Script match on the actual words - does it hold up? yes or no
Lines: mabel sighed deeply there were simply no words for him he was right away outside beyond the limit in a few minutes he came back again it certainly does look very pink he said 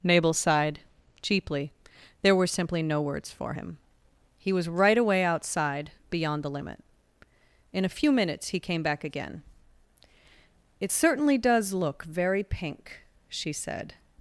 no